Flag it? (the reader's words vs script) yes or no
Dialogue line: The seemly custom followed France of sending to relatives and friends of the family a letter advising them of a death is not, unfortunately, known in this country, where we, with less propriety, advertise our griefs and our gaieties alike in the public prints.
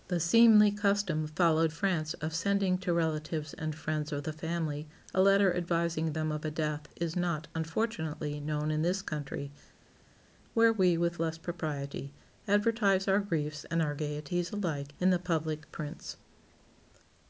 no